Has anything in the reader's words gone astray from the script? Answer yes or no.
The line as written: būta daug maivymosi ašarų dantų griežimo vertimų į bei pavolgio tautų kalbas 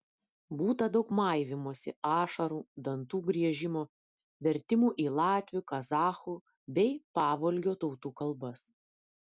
yes